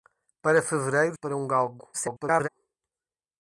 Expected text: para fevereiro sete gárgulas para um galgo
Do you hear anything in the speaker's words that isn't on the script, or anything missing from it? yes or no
yes